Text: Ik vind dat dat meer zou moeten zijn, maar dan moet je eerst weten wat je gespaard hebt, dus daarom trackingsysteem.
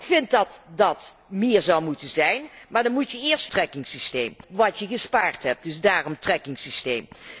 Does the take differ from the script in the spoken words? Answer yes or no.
yes